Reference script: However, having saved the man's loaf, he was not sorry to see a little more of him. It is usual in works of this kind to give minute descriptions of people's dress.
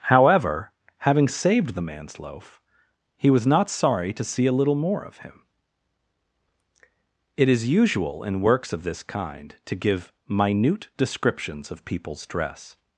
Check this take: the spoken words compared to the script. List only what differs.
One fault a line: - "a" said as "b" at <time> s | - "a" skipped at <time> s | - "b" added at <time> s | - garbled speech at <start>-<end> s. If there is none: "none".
none